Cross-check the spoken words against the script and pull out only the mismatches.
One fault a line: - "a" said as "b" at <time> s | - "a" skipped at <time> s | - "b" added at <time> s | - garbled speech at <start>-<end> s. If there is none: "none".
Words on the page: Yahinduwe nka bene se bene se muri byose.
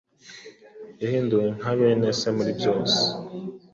- "bene se" skipped at 2.3 s